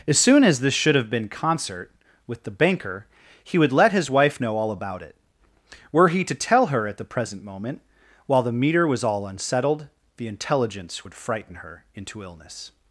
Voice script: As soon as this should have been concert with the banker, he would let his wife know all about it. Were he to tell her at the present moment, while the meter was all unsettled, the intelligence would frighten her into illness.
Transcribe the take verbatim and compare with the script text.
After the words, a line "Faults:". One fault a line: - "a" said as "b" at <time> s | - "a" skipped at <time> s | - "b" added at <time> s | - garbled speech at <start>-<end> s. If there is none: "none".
As soon as this should have been concert with the banker, he would let his wife know all about it. Were he to tell her at the present moment, while the meter was all unsettled, the intelligence would frighten her into illness.
Faults:
none